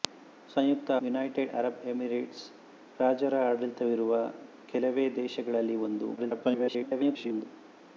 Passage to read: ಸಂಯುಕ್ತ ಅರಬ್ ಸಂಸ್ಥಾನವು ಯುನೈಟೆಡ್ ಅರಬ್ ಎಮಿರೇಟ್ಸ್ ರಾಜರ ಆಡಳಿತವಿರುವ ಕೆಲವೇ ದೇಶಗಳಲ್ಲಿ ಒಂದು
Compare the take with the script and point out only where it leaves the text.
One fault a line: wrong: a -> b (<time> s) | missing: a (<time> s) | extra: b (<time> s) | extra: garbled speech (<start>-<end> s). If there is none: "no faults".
missing: ಅರಬ್ ಸಂಸ್ಥಾನವು (0.9 s)
extra: garbled speech (6.2-7.5 s)